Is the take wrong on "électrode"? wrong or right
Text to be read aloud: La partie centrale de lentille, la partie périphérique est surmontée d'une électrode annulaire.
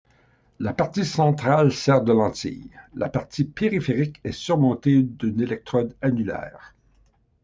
right